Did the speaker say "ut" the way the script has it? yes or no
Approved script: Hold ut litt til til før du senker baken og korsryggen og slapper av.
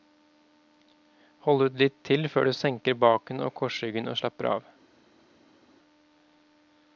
yes